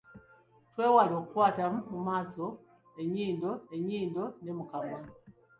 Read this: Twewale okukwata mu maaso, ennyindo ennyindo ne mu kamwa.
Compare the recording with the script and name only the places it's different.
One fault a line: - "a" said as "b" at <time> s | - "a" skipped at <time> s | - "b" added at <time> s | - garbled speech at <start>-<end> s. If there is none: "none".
none